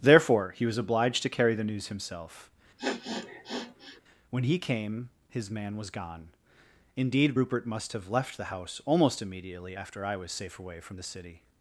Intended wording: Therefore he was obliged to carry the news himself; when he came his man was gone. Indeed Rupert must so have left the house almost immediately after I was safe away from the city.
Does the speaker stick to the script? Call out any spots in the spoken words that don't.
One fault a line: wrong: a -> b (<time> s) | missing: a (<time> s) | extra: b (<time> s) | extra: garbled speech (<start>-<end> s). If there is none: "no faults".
missing: so (7.9 s)